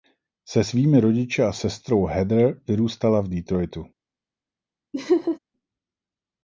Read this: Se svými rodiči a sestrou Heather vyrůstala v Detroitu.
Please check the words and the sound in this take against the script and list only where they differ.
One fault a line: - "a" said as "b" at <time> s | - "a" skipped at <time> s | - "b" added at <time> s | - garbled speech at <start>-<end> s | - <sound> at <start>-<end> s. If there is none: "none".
- laugh at 4.9-5.4 s